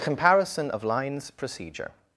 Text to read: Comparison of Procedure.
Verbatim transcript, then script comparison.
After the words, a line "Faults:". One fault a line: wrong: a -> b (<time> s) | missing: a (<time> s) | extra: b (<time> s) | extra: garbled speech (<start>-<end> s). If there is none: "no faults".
Comparison of lines Procedure.
Faults:
extra: lines (0.8 s)